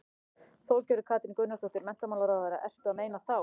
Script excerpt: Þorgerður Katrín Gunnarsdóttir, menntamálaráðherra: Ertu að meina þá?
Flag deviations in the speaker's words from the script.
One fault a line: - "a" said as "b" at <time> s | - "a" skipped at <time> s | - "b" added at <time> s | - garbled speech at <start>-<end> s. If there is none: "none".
none